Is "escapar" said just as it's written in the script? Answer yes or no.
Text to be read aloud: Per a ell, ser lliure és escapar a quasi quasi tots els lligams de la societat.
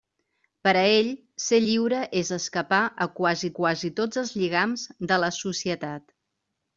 yes